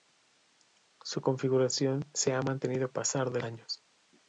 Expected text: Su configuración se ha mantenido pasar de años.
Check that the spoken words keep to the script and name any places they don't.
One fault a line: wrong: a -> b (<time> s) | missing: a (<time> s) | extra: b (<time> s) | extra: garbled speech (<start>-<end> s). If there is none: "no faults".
no faults